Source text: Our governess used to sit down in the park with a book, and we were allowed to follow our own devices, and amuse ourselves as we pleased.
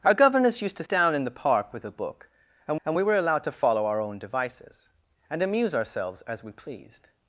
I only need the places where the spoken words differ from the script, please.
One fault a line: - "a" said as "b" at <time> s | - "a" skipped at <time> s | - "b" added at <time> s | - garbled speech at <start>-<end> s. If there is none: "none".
- "sit" skipped at 0.8 s
- "and" added at 2.8 s